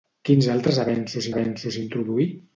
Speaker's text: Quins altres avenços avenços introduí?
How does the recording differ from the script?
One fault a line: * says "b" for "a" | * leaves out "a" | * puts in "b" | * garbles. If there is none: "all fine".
all fine